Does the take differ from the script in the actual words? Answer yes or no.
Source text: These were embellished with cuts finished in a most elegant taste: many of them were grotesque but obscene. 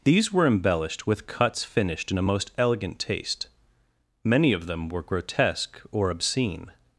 yes